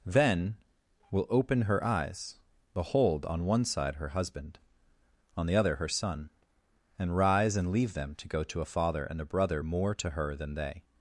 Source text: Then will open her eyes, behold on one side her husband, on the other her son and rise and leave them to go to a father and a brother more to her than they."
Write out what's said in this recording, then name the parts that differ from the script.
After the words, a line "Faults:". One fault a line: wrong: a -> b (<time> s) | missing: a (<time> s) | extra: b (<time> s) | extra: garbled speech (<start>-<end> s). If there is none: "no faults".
Then will open her eyes, behold on one side her husband, on the other her son and rise and leave them to go to a father and a brother more to her than they."
Faults:
no faults